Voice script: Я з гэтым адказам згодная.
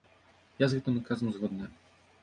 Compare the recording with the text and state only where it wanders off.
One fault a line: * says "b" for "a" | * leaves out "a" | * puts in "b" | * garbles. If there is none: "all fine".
all fine